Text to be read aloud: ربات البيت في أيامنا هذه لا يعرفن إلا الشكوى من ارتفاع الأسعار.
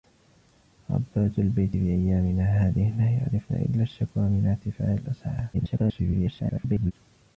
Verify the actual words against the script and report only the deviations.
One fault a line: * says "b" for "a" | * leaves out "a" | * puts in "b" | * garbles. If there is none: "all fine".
* garbles